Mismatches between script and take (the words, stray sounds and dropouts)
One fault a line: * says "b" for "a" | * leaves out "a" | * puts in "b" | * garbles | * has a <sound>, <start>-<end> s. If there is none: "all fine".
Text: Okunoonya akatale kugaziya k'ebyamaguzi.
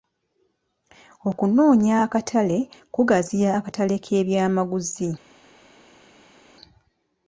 * puts in "akatale"